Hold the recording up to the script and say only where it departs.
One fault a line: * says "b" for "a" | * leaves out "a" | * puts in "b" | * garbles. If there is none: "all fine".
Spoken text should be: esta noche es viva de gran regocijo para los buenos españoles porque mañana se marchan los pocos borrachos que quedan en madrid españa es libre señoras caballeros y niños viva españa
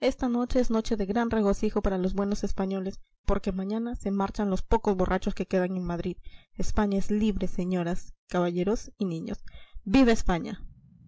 * says "noche" for "viva"